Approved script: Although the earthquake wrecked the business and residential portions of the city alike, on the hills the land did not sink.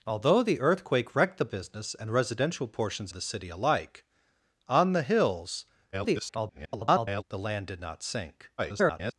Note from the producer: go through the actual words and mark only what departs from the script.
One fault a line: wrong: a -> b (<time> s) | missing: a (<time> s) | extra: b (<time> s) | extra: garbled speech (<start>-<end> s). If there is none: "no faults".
missing: of (3.1 s)
extra: garbled speech (5.9-7.2 s)
extra: garbled speech (8.6-9.1 s)